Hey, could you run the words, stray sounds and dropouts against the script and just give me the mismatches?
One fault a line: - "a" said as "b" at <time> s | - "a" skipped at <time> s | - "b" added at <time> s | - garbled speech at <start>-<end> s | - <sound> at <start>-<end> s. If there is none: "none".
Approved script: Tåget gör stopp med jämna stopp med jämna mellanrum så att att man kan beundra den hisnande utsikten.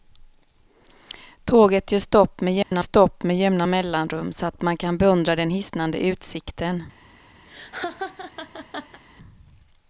- dropout at 2.6-2.7 s
- laugh at 7.4-9.0 s